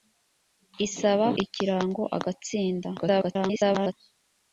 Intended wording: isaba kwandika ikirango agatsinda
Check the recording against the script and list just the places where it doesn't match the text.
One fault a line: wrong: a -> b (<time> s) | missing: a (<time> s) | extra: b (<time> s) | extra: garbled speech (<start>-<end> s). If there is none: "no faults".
missing: kwandika (1.3 s)
extra: garbled speech (3.0-3.9 s)